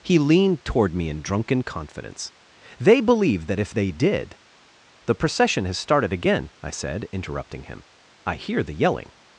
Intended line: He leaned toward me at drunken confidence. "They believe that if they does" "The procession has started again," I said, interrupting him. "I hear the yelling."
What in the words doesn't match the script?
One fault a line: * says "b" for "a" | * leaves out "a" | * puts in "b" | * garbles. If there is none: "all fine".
* says "in" for "at"
* says "did" for "does"